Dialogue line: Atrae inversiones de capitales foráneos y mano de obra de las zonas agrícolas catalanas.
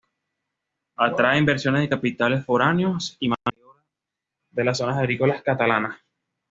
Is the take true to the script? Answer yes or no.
yes